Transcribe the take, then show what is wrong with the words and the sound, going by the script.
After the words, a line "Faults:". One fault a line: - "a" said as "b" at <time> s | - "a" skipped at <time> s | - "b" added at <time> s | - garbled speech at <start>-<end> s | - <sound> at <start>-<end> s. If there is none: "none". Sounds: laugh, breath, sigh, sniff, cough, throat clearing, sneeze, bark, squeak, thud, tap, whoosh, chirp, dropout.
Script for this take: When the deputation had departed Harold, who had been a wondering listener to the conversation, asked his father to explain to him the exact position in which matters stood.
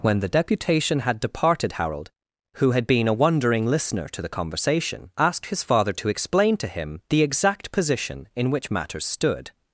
When the deputation had departed Harold, who had been a wondering listener to the conversation, asked his father to explain to him the exact position in which matters stood.
Faults:
none